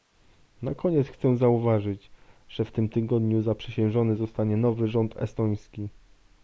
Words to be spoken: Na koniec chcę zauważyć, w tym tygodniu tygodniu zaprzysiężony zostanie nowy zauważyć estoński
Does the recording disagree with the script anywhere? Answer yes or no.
yes